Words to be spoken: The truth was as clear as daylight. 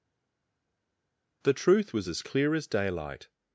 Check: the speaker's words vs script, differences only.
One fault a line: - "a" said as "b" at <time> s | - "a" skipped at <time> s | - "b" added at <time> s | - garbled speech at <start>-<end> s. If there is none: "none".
none